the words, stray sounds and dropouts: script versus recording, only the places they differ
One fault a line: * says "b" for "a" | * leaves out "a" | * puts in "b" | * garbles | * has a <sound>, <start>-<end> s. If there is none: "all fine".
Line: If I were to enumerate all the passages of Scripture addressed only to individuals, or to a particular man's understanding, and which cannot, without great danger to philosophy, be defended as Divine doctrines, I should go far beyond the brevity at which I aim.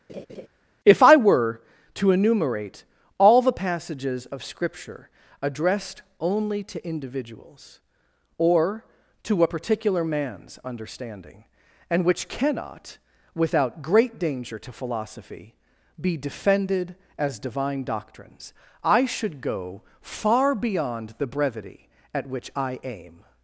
* has a laugh, 0.1-0.5 s